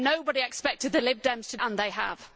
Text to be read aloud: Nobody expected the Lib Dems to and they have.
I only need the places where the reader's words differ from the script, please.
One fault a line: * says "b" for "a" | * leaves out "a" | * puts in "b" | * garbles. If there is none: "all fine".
all fine